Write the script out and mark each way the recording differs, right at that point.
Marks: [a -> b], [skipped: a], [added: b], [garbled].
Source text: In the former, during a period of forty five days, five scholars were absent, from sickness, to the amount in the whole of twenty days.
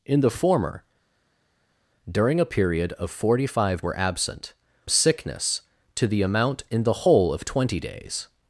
In the former, during a period of forty five [skipped: days, five scholars] were absent, [skipped: from] sickness, to the amount in the whole of twenty days.